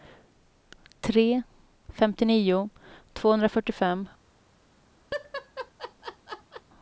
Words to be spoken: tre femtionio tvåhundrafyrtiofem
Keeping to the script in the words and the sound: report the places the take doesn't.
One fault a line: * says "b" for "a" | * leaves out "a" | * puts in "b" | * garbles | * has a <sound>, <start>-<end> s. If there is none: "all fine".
* has a laugh, 5.1-6.6 s